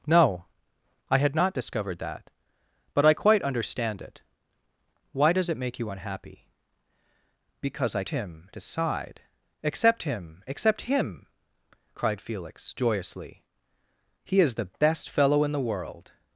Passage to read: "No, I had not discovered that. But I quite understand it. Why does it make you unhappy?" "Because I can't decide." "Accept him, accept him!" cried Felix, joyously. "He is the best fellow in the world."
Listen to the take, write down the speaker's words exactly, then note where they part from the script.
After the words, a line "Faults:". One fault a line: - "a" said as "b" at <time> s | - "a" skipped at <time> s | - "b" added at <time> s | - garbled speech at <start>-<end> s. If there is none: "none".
"No, I had not discovered that. But I quite understand it. Why does it make you unhappy?" "Because I him decide." "Accept him, accept him!" cried Felix, joyously. "He is the best fellow in the world."
Faults:
- "can't" said as "him" at 8.1 s